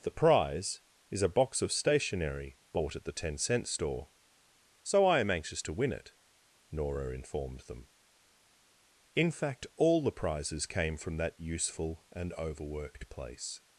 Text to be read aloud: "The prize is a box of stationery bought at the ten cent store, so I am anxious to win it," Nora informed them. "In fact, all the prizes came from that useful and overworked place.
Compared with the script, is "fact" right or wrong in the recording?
right